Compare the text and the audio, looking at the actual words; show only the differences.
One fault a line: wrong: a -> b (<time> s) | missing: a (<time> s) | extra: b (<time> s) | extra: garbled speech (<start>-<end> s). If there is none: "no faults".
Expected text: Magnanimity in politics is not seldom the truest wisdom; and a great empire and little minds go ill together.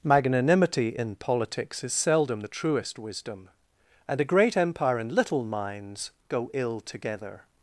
missing: not (1.9 s)